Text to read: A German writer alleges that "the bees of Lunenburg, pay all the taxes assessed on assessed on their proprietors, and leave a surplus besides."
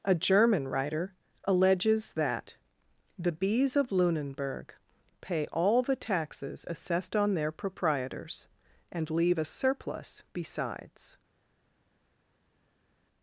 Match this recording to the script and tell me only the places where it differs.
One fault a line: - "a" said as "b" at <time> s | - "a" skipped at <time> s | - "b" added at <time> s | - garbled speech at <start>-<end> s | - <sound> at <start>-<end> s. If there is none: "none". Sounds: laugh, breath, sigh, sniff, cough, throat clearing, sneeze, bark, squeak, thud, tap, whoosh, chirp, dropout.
- "assessed on" skipped at 7.3 s